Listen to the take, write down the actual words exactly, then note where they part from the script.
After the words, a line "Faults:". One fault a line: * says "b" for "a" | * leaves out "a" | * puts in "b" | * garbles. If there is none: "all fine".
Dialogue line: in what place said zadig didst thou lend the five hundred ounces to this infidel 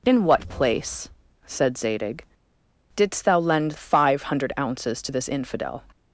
in what place said zadig didst thou lend five hundred ounces to this infidel
Faults:
* leaves out "the"